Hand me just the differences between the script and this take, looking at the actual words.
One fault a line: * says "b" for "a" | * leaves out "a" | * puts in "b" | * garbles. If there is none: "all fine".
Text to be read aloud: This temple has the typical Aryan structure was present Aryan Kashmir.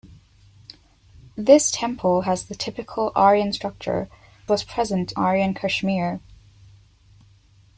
all fine